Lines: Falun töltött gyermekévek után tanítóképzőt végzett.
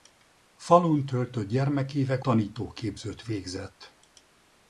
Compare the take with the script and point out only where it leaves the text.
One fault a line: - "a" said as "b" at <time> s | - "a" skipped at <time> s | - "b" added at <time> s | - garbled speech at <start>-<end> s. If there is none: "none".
- "után" skipped at 2.2 s